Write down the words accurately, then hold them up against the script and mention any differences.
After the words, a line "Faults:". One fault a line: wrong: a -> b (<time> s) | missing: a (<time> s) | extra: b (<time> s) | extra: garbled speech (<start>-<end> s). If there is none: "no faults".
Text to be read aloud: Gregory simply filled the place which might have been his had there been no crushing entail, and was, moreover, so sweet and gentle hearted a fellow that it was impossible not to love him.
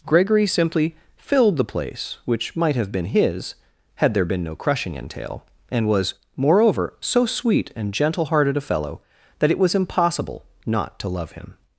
Gregory simply filled the place which might have been his had there been no crushing entail, and was, moreover, so sweet and gentle hearted a fellow that it was impossible not to love him.
Faults:
no faults